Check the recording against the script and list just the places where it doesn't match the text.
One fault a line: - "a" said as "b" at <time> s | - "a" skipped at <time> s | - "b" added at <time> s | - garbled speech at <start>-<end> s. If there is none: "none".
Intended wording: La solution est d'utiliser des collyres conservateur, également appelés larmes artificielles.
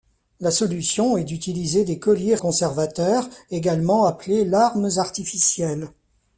none